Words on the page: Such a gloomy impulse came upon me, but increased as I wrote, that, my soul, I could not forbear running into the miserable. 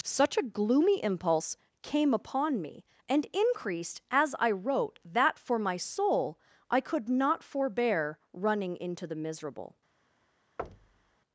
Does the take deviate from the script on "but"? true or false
true